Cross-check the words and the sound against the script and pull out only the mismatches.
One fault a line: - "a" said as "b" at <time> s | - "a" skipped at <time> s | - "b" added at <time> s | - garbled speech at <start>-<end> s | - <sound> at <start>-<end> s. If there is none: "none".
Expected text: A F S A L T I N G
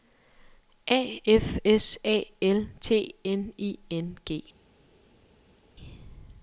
- "N" added at 3.2 s